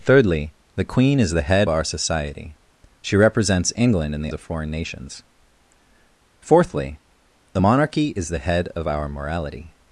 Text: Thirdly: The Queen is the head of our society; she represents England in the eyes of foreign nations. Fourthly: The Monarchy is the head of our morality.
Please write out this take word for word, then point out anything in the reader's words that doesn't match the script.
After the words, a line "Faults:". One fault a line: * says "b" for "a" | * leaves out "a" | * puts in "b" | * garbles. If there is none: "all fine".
Thirdly: The Queen is the head our society; she represents England in the of foreign nations. Fourthly: The Monarchy is the head of our morality.
Faults:
* leaves out "of"
* leaves out "eyes"